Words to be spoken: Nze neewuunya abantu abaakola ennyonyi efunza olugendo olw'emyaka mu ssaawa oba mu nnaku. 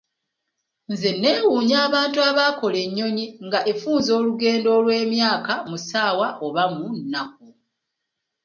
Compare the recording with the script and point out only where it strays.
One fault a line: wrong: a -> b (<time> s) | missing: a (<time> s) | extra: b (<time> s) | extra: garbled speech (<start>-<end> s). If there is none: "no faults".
extra: nga (3.5 s)